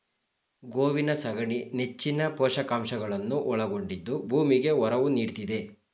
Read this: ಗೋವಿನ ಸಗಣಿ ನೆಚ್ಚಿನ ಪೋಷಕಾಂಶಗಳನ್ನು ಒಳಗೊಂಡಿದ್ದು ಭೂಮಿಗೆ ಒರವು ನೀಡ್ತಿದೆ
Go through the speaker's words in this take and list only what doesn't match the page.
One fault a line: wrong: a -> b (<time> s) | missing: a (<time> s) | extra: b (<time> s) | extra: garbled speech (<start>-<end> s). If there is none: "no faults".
no faults